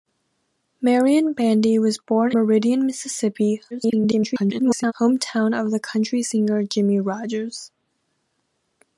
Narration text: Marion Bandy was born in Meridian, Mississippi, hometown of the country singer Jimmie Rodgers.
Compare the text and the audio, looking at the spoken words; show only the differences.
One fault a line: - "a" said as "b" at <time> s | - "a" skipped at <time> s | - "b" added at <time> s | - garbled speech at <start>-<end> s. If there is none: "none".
- "in" skipped at 2.3 s
- garbled speech at 3.7-4.9 s